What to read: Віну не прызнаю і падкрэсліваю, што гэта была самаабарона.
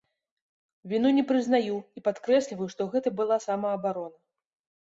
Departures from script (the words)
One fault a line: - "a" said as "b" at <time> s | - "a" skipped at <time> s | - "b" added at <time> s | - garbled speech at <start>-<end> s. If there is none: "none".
none